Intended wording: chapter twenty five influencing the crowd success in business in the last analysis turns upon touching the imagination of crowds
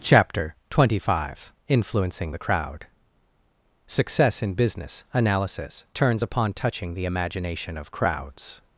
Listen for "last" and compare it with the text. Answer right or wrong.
wrong